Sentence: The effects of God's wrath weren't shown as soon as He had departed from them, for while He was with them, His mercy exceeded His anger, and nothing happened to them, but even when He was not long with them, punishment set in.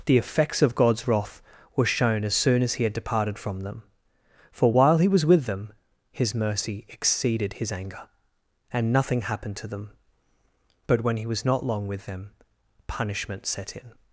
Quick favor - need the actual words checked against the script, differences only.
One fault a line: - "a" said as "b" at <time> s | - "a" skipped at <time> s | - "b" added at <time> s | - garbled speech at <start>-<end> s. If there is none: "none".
- "weren't" said as "were" at 1.8 s
- "even" skipped at 11.0 s